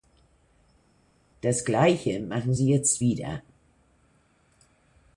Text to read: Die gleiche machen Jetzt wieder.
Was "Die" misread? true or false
true